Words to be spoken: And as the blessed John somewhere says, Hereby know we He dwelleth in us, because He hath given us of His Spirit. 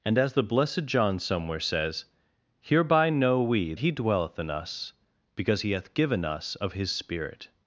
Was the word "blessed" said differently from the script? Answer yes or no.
no